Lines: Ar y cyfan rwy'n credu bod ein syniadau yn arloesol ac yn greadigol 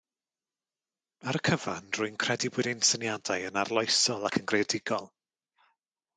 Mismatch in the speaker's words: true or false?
false